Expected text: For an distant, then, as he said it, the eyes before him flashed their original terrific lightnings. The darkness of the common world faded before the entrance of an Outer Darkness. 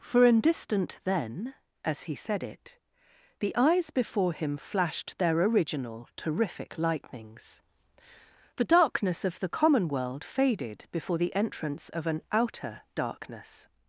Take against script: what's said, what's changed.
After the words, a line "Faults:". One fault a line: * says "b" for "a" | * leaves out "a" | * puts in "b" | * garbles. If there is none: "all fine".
For an distant, then, as he said it, the eyes before him flashed their original terrific lightnings. The darkness of the common world faded before the entrance of an Outer Darkness.
Faults:
all fine